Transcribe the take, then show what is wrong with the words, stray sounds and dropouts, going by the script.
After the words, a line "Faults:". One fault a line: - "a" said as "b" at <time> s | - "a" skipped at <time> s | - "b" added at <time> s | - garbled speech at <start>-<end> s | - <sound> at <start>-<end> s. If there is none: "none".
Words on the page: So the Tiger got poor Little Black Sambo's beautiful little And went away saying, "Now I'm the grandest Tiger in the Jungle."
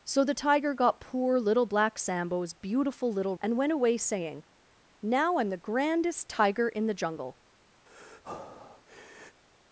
So the Tiger got poor Little Black Sambo's beautiful little And went away saying, "Now I'm the grandest Tiger in the Jungle."
Faults:
- breath at 7.9-9.4 s